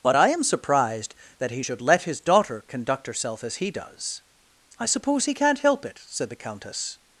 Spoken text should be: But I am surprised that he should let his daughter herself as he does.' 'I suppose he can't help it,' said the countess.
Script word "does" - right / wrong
right